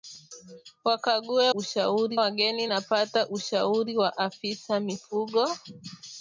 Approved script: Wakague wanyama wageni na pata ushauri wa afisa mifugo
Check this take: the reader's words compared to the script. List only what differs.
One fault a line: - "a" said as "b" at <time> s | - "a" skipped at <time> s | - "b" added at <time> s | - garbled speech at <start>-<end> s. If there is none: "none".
- "wanyama" said as "ushauri" at 1.5 s